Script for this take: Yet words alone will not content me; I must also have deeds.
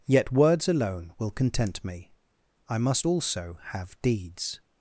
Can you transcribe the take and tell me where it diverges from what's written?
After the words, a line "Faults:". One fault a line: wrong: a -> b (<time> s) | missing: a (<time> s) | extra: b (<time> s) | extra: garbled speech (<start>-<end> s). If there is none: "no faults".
Yet words alone will content me; I must also have deeds.
Faults:
missing: not (1.3 s)